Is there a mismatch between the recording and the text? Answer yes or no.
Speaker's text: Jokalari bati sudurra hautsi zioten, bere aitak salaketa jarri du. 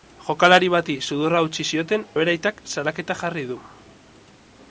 no